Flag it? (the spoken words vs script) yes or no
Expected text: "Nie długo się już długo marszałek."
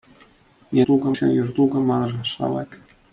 no